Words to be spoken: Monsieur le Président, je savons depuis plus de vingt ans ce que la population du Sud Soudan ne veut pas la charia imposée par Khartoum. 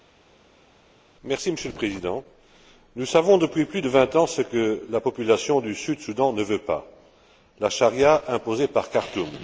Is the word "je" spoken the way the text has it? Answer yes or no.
no